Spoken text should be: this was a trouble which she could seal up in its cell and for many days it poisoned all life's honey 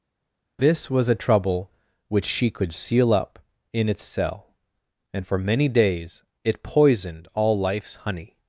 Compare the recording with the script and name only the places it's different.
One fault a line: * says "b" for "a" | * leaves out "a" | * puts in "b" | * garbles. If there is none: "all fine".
all fine